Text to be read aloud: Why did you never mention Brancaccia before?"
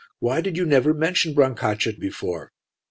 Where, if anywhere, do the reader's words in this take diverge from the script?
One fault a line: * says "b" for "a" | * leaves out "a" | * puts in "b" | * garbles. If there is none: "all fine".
all fine